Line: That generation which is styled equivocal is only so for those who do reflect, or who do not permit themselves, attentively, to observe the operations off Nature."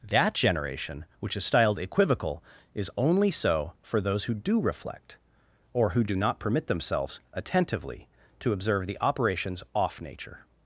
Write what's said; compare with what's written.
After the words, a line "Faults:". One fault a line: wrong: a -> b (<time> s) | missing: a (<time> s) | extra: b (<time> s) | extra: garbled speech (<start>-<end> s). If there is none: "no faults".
That generation which is styled equivocal is only so for those who do reflect, or who do not permit themselves, attentively, to observe the operations off Nature."
Faults:
no faults